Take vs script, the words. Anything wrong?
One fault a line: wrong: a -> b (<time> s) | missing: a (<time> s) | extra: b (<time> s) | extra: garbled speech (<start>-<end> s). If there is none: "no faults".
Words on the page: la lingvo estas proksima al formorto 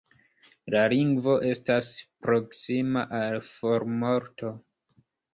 no faults